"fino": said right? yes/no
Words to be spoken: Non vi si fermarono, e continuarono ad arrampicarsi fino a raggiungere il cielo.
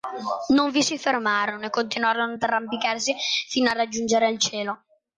yes